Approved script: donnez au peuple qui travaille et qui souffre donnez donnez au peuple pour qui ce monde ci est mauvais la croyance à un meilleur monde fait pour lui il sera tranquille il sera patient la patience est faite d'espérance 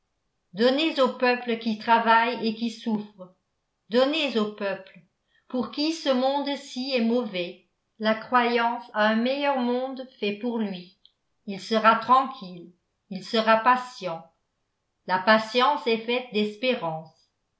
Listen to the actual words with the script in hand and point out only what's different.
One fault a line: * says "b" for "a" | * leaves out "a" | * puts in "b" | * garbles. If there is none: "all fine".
* leaves out "donnez"